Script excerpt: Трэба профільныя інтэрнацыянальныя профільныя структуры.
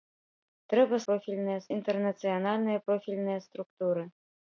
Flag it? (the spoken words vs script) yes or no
no